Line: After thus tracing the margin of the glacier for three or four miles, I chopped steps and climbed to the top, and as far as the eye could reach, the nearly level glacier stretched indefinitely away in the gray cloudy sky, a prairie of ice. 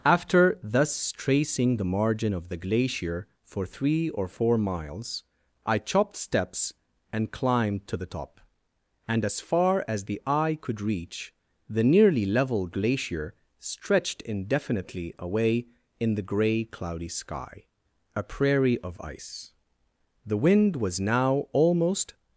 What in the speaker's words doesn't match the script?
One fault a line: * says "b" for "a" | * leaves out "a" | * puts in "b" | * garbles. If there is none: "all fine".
* puts in "The wind was now almost"